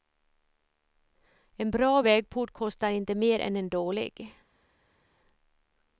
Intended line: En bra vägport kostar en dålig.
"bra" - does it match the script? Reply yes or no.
yes